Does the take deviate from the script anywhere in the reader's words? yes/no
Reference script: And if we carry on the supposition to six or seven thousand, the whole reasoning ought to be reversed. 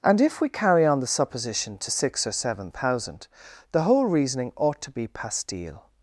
yes